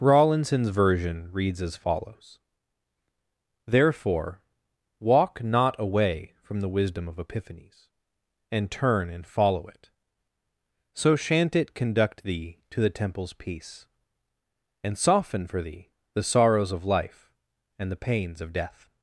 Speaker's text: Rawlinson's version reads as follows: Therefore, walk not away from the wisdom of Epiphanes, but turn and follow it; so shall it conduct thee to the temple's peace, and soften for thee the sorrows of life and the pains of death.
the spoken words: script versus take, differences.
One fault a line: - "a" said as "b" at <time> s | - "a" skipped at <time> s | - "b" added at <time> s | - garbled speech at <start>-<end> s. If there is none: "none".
- "but" said as "and" at 8.5 s
- "shall" said as "shan't" at 11.2 s